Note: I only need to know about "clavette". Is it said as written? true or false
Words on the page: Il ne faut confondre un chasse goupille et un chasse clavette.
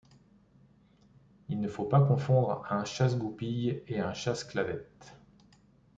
true